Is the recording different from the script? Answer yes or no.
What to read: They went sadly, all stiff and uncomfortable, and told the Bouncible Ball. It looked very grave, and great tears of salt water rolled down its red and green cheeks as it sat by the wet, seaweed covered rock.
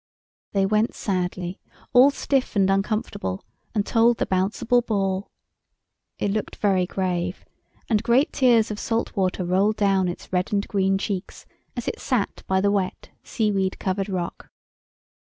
no